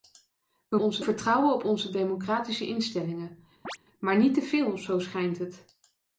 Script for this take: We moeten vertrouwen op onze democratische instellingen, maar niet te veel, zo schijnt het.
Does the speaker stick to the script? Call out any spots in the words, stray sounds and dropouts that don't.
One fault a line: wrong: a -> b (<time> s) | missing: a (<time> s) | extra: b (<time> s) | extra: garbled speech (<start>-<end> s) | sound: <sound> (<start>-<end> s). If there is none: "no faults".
wrong: moeten -> onze (0.8 s)
sound: chirp (3.6-3.8 s)